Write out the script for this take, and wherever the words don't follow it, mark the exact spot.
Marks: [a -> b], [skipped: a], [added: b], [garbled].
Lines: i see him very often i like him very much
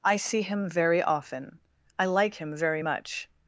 i see him very often i like him very much